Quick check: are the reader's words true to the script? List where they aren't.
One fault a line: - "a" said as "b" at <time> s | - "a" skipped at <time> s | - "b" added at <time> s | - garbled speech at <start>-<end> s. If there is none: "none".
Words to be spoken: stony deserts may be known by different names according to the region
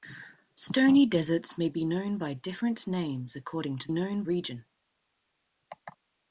- "the" said as "known" at 3.9 s